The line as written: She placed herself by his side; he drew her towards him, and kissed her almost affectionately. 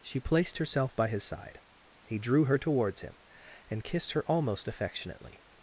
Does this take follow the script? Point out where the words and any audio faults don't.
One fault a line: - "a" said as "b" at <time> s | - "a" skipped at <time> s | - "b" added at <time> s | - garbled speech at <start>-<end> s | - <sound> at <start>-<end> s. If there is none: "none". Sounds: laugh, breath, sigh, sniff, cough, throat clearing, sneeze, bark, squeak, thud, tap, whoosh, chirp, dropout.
none